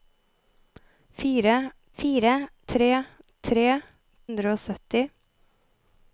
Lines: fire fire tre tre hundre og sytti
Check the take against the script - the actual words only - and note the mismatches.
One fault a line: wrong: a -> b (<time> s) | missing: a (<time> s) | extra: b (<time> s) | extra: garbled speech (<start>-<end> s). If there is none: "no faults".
no faults